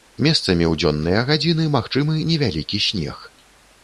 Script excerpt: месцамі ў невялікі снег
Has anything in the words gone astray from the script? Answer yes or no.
yes